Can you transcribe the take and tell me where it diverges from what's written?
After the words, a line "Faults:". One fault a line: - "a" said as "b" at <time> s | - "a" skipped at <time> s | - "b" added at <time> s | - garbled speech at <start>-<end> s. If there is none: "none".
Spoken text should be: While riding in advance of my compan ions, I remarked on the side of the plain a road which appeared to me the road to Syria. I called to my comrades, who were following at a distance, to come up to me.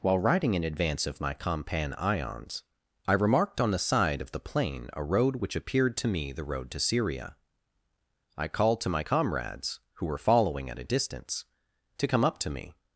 While riding in advance of my compan ions, I remarked on the side of the plain a road which appeared to me the road to Syria. I called to my comrades, who were following at a distance, to come up to me.
Faults:
none